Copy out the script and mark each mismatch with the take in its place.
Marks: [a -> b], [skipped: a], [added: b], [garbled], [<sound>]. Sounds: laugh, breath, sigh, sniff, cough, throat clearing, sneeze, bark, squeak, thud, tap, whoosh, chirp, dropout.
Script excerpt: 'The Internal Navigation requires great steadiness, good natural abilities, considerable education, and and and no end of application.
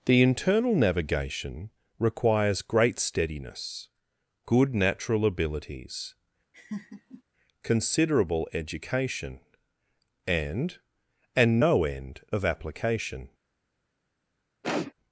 'The Internal Navigation requires great steadiness, good natural abilities, [laugh] considerable education, and and [skipped: and] no end of application. [sniff]